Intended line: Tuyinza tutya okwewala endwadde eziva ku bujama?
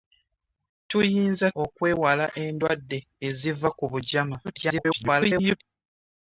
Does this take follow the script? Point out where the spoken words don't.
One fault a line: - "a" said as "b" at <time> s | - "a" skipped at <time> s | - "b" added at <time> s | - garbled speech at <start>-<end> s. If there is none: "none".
- "tutya" skipped at 1.5 s
- garbled speech at 4.4-5.6 s